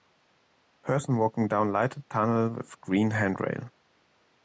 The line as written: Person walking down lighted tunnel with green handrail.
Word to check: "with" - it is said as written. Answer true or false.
true